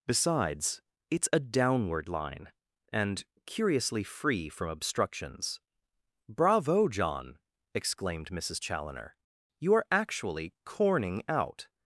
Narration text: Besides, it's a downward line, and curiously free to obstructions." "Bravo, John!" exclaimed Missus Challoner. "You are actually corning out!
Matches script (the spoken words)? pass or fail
fail